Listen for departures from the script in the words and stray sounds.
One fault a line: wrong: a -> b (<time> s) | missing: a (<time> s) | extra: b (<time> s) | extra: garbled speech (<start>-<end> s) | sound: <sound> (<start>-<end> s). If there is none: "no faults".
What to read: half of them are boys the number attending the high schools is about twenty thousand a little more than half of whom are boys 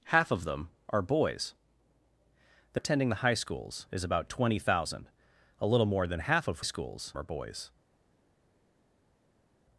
missing: number (2.8 s)
wrong: whom -> schools (6.6 s)